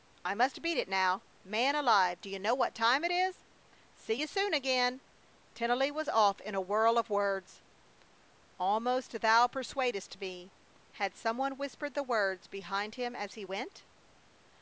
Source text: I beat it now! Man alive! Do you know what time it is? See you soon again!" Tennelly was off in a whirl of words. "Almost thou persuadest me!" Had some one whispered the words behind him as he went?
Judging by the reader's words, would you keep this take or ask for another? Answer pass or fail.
fail